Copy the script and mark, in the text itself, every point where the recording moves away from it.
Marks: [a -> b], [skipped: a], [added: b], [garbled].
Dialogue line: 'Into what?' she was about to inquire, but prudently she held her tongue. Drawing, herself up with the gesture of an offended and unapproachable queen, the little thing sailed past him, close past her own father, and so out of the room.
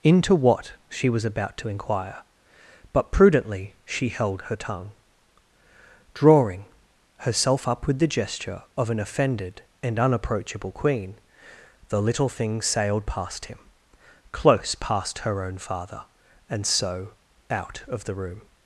'Into what?' she was about to inquire, but prudently she held her tongue. Drawing, herself up with the gesture of an offended and unapproachable queen, the little thing sailed past him, close past her own father, and so out of the room.